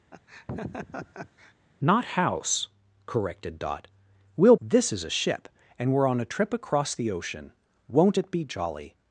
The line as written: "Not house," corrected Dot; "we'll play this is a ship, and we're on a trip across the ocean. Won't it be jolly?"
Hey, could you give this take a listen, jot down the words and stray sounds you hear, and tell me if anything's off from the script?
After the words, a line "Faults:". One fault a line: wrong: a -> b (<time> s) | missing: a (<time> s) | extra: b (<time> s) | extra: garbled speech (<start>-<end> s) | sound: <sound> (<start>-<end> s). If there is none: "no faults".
"Not house," corrected Dot; "we'll this is a ship, and we're on a trip across the ocean. Won't it be jolly?"
Faults:
sound: laugh (0.1-1.5 s)
missing: play (4.6 s)